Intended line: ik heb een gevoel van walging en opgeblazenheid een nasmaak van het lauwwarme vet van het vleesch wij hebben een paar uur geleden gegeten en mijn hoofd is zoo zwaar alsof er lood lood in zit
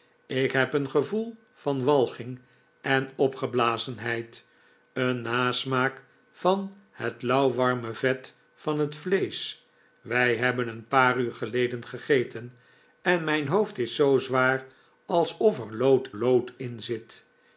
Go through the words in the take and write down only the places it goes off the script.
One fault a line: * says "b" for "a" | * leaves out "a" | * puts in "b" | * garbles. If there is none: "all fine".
all fine